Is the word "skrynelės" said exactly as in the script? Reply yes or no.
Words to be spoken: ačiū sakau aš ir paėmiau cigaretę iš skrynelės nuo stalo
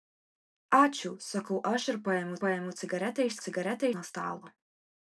no